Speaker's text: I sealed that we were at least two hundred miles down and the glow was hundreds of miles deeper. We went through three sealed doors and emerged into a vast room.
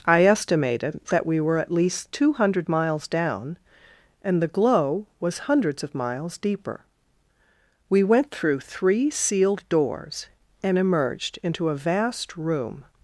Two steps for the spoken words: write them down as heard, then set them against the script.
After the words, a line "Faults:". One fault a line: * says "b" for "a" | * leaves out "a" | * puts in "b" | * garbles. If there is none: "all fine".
I estimated that we were at least two hundred miles down and the glow was hundreds of miles deeper. We went through three sealed doors and emerged into a vast room.
Faults:
* says "estimated" for "sealed"